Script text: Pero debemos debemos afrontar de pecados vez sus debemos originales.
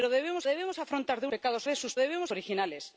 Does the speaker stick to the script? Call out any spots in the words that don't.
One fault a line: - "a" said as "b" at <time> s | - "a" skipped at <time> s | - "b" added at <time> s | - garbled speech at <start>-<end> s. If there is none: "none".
none